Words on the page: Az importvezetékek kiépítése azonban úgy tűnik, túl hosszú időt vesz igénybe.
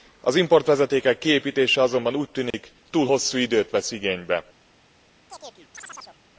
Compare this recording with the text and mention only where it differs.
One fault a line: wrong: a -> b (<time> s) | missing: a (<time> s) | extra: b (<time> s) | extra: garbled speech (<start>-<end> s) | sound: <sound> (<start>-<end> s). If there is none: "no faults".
sound: dropout (2.5-2.5 s)
sound: chirp (5.3-6.2 s)